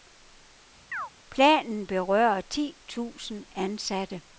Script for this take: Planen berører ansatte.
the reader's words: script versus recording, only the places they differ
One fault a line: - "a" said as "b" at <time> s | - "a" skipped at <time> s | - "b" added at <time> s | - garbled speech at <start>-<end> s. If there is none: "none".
- "ti tusind" added at 2.4 s